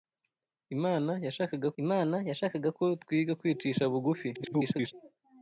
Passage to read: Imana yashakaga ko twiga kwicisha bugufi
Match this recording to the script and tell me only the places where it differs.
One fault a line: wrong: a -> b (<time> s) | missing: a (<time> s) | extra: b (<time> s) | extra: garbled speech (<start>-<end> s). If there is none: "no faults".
extra: imana yashakaga (1.8 s)
extra: garbled speech (4.3-4.9 s)